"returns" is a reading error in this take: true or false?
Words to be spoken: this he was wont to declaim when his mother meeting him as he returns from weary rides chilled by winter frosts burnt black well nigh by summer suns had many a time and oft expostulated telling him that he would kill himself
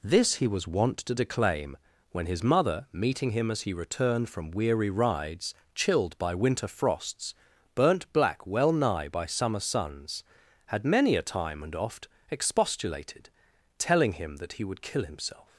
true